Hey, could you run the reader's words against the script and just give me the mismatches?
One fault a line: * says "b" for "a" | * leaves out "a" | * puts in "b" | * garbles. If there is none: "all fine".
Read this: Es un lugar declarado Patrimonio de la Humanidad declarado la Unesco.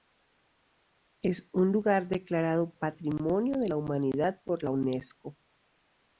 * says "por" for "declarado"